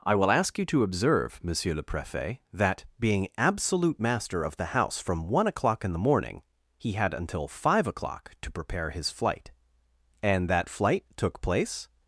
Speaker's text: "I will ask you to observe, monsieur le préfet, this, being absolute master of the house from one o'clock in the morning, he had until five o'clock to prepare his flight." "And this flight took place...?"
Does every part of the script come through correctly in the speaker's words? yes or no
no